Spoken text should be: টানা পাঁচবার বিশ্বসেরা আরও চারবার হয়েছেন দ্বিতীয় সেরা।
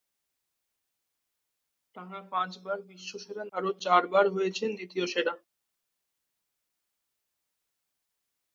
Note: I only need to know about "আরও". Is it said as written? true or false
true